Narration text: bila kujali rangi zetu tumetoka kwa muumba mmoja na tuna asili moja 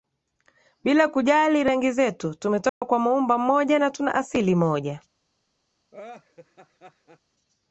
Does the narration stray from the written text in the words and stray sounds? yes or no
yes